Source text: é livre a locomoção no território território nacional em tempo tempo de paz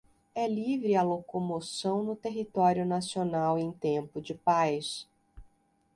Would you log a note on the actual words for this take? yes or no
yes